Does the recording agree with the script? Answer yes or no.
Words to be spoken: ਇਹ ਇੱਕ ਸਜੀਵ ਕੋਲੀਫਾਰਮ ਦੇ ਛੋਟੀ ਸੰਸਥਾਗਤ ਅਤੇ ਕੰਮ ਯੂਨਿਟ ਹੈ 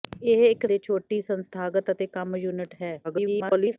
no